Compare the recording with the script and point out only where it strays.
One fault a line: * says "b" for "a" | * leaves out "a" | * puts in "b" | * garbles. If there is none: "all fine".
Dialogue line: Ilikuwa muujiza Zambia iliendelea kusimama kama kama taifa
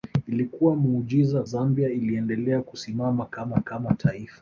all fine